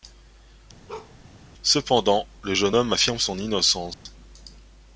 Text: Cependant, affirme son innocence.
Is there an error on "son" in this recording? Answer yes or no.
no